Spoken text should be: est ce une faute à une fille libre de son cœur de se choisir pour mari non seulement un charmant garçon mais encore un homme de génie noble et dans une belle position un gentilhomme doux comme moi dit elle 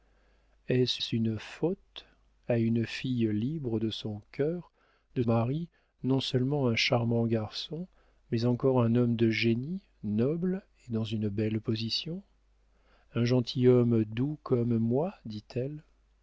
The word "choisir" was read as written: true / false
false